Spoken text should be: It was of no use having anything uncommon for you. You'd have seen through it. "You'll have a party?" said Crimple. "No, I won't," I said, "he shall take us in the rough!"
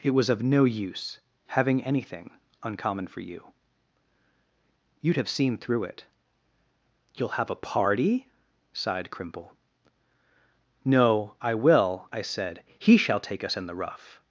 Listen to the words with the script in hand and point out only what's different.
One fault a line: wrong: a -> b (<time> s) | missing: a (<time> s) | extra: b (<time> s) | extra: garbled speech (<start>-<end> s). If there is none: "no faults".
wrong: said -> sighed (8.7 s)
wrong: won't -> will (11.5 s)